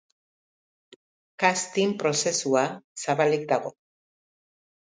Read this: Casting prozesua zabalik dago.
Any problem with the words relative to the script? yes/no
no